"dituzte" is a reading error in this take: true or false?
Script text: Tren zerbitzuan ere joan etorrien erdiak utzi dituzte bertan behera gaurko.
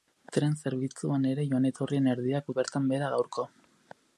true